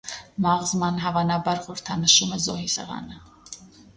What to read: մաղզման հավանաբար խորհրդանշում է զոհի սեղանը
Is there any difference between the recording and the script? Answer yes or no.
no